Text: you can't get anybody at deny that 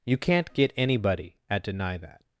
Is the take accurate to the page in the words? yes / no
yes